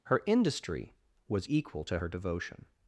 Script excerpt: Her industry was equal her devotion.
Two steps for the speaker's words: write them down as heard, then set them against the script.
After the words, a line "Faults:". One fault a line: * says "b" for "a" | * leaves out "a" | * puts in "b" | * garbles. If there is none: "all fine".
Her industry was equal to her devotion.
Faults:
* puts in "to"